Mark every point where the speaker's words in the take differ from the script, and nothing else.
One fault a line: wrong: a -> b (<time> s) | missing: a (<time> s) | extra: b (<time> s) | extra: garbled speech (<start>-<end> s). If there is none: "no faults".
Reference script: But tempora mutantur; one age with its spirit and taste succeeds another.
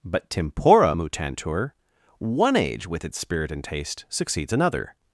no faults